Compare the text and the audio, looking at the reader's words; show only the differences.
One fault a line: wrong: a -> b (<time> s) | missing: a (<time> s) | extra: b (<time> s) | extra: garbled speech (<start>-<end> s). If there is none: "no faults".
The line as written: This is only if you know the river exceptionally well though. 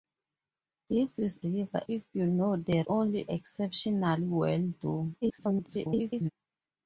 wrong: only -> river (1.4 s)
wrong: river -> only (2.9 s)
extra: garbled speech (5.2-6.3 s)